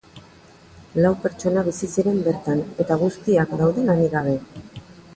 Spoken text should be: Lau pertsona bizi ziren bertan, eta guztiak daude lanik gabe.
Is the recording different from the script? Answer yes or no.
no